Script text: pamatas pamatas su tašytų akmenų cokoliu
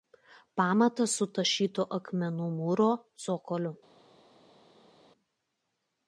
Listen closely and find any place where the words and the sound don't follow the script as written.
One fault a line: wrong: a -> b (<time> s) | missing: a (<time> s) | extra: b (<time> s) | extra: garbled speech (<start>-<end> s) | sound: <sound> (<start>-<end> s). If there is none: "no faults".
missing: pamatas (1.1 s)
extra: mūro (2.6 s)